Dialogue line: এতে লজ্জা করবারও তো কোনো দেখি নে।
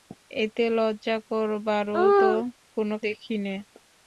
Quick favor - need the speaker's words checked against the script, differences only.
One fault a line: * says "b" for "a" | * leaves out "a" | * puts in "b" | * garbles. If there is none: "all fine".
all fine